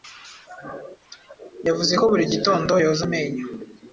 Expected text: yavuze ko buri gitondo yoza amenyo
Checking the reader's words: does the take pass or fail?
pass